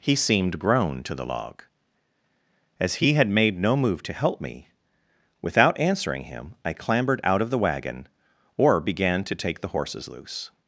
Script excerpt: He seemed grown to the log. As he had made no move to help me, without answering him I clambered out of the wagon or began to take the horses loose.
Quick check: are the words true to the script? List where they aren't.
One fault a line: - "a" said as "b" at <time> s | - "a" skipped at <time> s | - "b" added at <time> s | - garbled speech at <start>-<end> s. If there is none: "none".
none